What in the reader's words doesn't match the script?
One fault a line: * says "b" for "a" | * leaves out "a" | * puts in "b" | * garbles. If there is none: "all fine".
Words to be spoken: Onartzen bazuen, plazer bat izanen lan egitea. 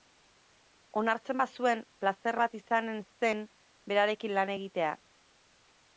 * puts in "zen berarekin"